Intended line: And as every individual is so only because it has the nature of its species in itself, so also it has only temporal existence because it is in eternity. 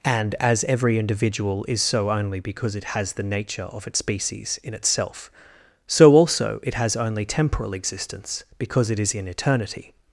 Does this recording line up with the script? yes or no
yes